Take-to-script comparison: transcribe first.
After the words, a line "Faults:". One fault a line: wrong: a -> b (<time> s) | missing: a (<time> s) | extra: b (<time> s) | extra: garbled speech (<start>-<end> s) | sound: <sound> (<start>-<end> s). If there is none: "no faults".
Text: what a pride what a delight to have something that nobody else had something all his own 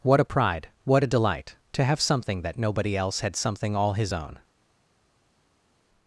what a pride what a delight to have something that nobody else had something all his own
Faults:
no faults